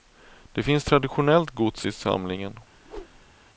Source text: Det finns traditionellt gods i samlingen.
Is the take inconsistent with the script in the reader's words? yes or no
no